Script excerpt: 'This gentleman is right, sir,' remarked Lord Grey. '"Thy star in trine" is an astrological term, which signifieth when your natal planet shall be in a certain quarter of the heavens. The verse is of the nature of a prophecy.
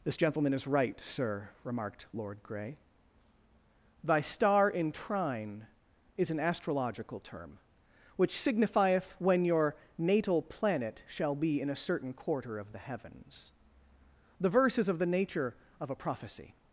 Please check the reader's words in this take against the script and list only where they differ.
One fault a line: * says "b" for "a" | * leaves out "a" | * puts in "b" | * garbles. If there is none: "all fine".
all fine